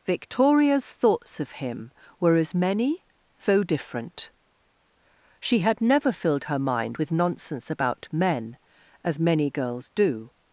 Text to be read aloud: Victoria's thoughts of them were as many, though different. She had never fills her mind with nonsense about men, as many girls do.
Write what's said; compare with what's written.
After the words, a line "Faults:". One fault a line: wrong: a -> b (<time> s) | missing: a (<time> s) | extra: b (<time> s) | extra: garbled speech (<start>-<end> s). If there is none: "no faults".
Victoria's thoughts of him were as many, though different. She had never filled her mind with nonsense about men, as many girls do.
Faults:
wrong: them -> him (1.5 s)
wrong: fills -> filled (6.1 s)